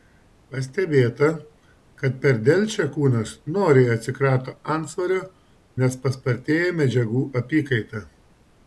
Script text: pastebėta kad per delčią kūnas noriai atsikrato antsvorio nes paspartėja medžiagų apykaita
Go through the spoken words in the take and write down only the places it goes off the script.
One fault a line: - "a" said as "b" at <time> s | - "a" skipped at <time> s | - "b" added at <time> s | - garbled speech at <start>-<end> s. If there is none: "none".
none